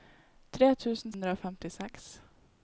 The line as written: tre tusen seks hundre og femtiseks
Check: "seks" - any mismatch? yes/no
yes